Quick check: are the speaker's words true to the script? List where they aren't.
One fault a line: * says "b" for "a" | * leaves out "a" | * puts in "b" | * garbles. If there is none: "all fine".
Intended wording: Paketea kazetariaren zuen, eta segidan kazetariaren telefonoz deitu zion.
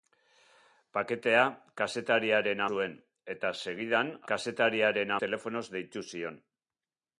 all fine